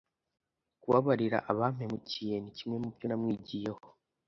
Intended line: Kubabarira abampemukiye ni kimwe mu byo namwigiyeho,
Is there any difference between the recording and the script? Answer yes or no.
no